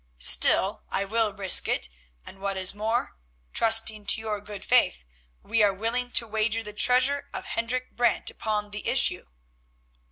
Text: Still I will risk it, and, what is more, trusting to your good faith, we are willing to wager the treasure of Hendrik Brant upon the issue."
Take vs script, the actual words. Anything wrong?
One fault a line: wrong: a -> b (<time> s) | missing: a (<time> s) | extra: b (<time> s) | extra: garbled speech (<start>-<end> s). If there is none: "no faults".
no faults